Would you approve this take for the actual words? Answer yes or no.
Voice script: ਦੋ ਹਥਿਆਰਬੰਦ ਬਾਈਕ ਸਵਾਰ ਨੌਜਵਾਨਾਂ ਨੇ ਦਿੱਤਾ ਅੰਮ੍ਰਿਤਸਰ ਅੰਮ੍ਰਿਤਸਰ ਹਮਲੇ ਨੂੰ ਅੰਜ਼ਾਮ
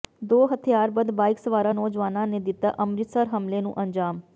no